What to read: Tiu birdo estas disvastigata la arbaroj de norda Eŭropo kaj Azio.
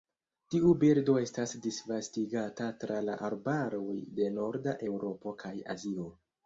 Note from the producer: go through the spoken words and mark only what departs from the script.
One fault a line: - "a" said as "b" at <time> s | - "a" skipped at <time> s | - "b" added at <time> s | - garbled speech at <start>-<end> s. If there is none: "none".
- "tra" added at 2.9 s